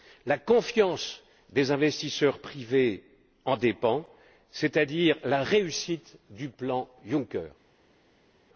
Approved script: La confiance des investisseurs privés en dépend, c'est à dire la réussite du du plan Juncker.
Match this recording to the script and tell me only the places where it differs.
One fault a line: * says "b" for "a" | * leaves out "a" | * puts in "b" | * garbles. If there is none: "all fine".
* leaves out "du"